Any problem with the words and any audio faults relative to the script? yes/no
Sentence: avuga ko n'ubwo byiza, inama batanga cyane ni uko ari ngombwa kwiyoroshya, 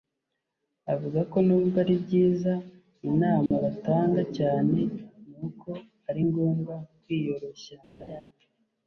yes